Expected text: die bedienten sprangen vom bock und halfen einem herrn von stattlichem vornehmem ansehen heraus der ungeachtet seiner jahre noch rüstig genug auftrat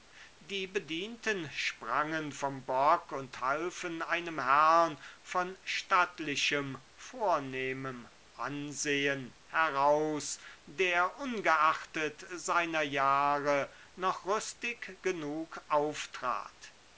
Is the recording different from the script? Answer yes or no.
no